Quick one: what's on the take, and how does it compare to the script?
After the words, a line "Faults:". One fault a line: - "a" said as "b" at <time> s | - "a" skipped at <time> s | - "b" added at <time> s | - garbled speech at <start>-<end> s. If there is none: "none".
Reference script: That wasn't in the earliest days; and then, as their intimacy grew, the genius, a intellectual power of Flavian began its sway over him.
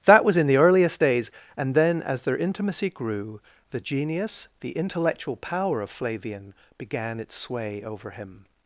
That was in the earliest days; and then, as their intimacy grew, the genius, the intellectual power of Flavian began its sway over him.
Faults:
- "wasn't" said as "was" at 0.2 s
- "a" said as "the" at 4.6 s